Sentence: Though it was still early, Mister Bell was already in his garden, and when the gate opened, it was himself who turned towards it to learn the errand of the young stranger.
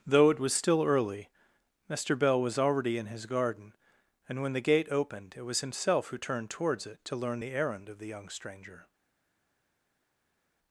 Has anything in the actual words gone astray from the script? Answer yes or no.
no